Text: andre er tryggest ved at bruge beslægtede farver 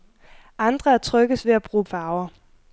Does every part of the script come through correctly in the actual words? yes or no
no